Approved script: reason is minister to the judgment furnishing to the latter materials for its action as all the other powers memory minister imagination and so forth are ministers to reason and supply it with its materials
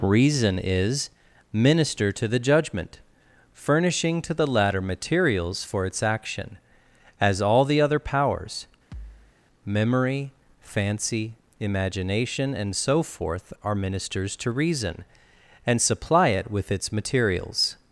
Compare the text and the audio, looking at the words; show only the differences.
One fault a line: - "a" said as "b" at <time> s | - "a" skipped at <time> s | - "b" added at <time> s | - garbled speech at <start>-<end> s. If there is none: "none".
- "minister" said as "fancy" at 10.6 s